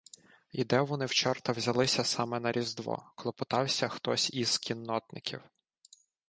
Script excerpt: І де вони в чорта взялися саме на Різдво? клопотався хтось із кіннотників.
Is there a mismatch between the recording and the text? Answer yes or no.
no